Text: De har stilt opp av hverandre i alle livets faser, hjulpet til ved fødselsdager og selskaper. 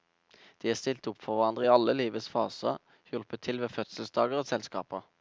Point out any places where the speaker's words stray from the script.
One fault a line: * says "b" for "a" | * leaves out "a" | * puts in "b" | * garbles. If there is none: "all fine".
* says "for" for "av"